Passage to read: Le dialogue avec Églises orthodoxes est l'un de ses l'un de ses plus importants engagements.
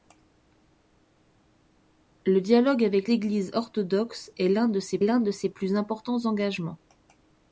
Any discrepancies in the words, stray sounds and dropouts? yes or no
no